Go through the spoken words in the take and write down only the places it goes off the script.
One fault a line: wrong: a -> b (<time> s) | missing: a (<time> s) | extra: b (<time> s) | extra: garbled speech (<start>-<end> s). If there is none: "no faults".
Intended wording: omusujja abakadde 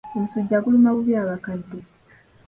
extra: guluma bubi (0.6 s)